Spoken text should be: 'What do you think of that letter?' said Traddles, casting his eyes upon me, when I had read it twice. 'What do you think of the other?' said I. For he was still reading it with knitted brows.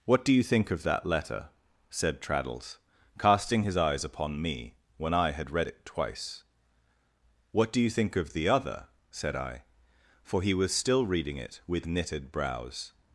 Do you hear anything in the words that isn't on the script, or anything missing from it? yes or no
no